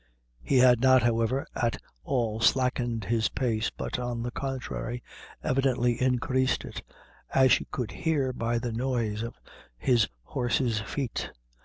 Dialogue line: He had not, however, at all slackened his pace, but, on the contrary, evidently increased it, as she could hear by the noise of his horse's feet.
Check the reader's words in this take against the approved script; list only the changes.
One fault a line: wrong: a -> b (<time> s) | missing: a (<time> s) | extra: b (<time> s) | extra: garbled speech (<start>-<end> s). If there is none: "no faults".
no faults